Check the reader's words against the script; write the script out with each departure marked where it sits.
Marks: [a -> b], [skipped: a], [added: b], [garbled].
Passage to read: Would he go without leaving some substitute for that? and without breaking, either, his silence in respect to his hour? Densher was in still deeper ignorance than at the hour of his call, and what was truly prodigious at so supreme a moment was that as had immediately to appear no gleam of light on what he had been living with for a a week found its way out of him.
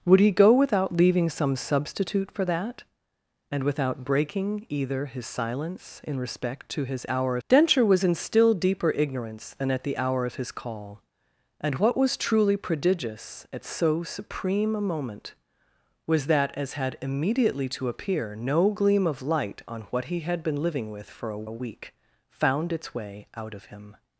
Would he go without leaving some substitute for that? and without breaking, either, his silence in respect to his hour? Densher was in still deeper ignorance than at the hour of his call, and what was truly prodigious at so supreme a moment was that as had immediately to appear no gleam of light on what he had been living with for a a week found its way out of him.